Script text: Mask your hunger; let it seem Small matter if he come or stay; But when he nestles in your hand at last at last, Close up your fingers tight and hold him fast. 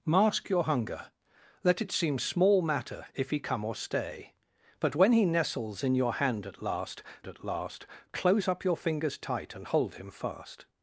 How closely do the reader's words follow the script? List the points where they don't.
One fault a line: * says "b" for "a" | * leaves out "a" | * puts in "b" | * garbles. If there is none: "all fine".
all fine